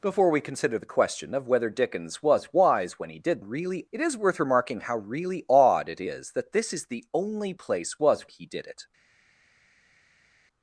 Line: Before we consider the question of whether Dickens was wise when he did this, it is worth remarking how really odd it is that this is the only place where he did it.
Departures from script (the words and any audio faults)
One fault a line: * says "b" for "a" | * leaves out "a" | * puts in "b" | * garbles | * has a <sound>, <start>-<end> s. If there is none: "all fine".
* says "really" for "this"
* says "was" for "where"